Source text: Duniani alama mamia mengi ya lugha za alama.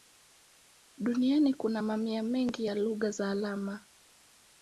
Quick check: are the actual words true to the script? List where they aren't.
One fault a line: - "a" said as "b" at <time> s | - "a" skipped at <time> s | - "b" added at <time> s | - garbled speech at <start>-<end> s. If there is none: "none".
- "alama" said as "kuna" at 1.5 s